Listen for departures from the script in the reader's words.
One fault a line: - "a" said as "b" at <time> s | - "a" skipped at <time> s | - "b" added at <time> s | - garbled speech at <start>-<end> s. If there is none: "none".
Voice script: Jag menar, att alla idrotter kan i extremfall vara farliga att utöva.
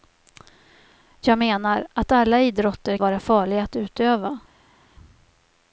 - "kan i extremfall" skipped at 3.0 s